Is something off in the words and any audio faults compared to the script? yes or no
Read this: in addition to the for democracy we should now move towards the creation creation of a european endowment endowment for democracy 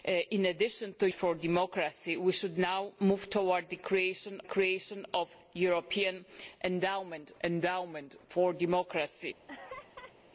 yes